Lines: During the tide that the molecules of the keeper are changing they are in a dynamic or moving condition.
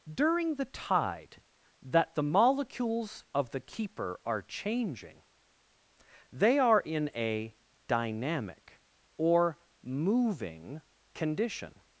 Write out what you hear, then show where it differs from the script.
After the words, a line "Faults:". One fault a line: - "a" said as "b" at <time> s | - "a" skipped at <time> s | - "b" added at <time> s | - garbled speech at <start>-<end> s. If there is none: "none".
During the tide that the molecules of the keeper are changing they are in a dynamic or moving condition.
Faults:
none